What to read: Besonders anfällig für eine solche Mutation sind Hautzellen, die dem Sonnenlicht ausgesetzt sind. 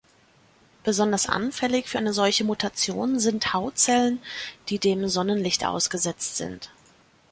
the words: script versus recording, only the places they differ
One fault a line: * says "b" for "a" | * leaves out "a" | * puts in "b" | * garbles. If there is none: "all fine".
all fine